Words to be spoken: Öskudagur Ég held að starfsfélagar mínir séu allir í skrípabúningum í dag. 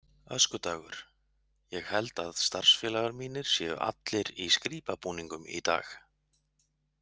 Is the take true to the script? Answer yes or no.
yes